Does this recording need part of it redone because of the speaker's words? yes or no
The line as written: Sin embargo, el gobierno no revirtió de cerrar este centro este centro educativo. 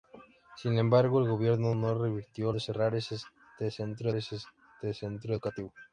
no